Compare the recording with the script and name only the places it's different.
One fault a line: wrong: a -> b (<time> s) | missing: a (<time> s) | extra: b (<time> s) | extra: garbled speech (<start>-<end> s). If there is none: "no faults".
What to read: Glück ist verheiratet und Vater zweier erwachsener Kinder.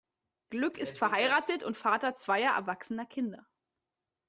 no faults